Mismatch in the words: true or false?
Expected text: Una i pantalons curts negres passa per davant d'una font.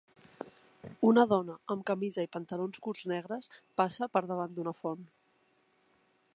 true